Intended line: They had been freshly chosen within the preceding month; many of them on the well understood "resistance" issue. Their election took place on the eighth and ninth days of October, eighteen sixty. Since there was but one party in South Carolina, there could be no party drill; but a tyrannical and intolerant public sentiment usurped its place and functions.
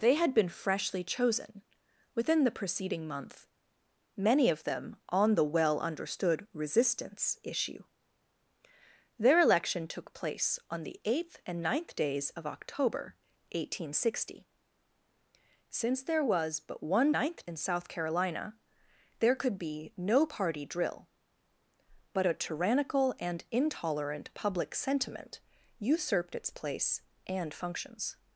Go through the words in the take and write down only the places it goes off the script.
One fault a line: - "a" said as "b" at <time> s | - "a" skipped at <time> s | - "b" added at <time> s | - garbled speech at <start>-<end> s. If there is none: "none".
- "party" said as "ninth" at 17.1 s